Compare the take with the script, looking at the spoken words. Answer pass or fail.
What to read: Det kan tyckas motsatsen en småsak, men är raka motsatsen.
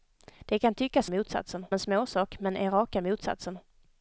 pass